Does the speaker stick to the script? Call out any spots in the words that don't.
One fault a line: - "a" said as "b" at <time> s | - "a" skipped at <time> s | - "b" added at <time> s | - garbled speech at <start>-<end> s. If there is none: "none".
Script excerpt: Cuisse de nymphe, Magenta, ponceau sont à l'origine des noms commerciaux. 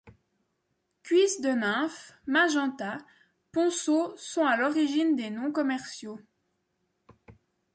none